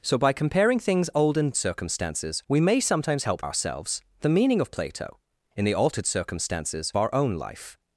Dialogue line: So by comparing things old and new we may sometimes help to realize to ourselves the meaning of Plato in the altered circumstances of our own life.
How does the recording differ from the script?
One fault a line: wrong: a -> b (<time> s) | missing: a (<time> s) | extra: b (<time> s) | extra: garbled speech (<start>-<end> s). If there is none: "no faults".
wrong: new -> circumstances (1.6 s)
missing: to realize to (3.4 s)
missing: of (6.9 s)